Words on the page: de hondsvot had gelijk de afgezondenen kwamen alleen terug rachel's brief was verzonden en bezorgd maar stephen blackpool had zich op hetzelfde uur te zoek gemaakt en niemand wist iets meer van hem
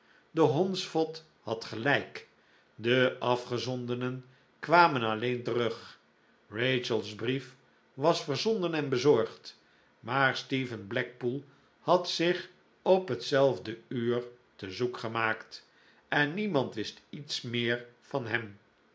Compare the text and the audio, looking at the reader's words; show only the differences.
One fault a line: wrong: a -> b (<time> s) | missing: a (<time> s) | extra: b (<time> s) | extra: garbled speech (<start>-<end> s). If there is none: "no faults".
no faults